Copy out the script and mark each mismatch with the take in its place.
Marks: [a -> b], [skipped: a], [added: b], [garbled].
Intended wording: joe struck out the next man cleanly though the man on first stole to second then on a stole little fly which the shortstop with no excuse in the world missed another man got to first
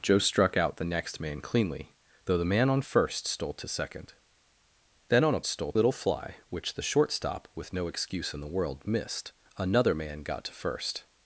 joe struck out the next man cleanly though the man on first stole to second then on a stole little fly which the shortstop with no excuse in the world missed another man got to first